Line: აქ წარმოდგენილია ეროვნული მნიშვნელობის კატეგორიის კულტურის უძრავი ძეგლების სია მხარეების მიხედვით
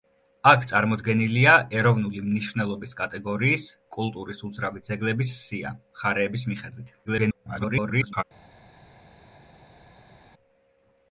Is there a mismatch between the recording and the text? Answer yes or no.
yes